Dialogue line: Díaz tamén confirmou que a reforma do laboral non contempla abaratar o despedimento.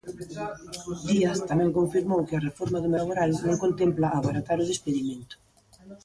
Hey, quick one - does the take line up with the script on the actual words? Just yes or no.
yes